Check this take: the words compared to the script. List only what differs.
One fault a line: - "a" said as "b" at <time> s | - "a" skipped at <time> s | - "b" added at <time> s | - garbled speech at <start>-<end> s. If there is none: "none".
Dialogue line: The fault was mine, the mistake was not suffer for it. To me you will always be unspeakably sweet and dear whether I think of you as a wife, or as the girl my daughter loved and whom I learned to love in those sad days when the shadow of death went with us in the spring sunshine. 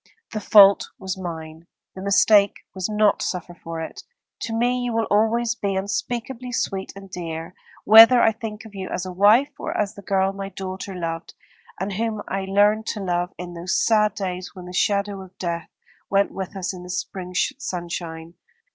none